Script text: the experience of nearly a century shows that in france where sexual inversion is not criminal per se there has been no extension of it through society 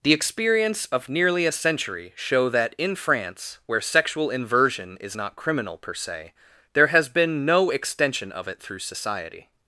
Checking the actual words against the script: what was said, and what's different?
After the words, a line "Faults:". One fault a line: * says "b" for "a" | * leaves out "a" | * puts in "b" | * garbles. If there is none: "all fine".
the experience of nearly a century show that in france where sexual inversion is not criminal per se there has been no extension of it through society
Faults:
* says "show" for "shows"